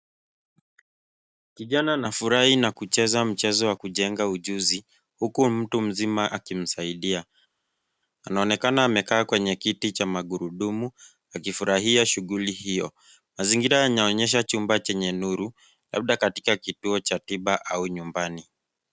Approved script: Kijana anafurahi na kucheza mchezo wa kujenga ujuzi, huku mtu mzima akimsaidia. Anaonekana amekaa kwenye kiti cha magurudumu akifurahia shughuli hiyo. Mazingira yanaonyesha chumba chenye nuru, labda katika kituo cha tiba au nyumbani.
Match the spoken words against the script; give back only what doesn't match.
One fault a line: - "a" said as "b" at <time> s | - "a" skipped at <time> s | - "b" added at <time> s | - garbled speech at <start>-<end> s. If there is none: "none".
none